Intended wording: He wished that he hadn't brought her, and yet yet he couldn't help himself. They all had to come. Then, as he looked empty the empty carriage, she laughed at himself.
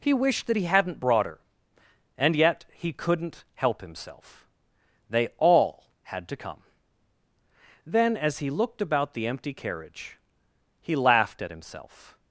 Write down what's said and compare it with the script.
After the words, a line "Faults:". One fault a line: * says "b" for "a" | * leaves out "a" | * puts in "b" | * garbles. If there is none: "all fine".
He wished that he hadn't brought her, and yet he couldn't help himself. They all had to come. Then, as he looked about the empty carriage, he laughed at himself.
Faults:
* leaves out "yet"
* says "about" for "empty"
* says "he" for "she"